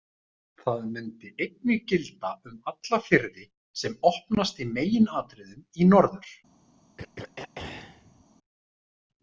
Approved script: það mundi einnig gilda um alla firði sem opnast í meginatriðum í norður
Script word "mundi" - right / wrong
right